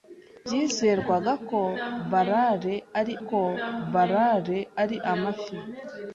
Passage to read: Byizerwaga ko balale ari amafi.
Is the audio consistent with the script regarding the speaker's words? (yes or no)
no